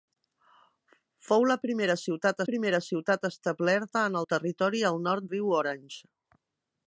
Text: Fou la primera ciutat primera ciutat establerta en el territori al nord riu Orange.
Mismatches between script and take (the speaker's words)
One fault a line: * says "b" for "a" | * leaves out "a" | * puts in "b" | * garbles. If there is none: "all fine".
all fine